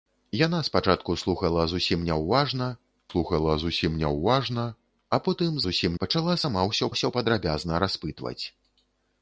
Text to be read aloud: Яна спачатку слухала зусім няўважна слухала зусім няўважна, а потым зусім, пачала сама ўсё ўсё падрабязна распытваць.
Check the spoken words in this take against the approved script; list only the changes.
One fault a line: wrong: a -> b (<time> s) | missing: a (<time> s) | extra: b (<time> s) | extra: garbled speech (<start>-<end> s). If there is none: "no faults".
no faults